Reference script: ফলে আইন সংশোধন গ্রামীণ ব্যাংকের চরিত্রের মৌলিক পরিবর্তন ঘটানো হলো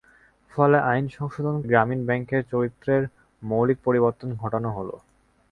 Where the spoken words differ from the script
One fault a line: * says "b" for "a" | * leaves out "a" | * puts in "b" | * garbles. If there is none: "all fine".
all fine